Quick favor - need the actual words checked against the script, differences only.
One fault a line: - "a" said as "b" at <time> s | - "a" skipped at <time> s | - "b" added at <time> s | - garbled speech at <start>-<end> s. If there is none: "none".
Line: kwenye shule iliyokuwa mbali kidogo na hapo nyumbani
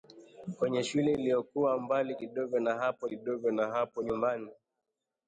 - "kidogo na hapo" added at 3.0 s